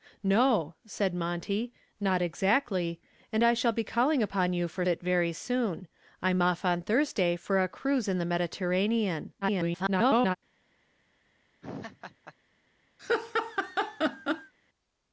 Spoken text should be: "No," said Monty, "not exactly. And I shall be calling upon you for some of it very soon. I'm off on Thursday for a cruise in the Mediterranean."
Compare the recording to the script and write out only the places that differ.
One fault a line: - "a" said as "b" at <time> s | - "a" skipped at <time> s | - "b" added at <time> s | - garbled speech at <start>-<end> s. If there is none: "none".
- "some of" skipped at 4.8 s
- garbled speech at 9.4-10.4 s